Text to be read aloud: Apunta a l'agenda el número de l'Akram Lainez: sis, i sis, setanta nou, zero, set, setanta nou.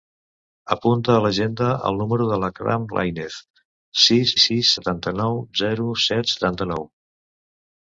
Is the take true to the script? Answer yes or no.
yes